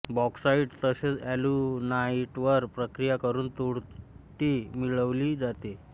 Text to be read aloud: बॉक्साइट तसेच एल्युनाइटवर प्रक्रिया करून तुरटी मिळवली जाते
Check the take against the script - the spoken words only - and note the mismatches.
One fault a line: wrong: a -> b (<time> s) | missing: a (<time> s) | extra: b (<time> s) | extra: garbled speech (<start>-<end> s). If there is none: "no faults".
no faults